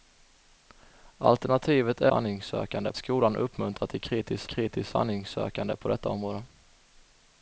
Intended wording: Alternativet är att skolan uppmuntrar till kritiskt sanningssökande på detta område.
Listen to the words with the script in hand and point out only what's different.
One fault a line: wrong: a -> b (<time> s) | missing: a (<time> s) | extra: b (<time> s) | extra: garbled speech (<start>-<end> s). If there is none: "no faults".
wrong: att -> sanningssökande (2.1 s)
extra: kritiskt (4.5 s)